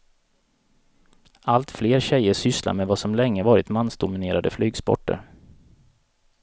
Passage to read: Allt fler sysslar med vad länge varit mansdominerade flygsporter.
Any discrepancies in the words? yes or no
yes